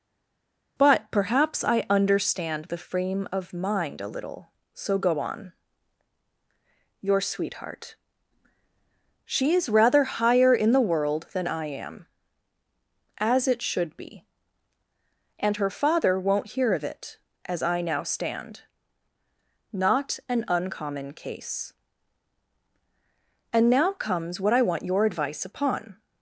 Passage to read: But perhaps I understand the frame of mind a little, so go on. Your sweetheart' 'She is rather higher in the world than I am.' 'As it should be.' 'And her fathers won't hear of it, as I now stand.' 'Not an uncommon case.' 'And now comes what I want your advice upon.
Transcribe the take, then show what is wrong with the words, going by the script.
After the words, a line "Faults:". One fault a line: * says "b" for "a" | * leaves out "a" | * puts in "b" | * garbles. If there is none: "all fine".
But perhaps I understand the frame of mind a little, so go on. Your sweetheart' 'She is rather higher in the world than I am.' 'As it should be.' 'And her father won't hear of it, as I now stand.' 'Not an uncommon case.' 'And now comes what I want your advice upon.
Faults:
* says "father" for "fathers"